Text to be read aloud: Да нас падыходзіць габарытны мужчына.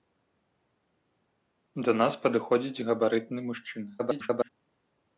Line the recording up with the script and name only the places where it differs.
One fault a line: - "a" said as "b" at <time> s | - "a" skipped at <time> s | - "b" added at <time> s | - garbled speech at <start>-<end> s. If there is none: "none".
- garbled speech at 4.0-4.5 s